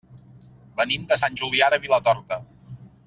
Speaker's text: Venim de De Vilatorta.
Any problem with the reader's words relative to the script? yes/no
yes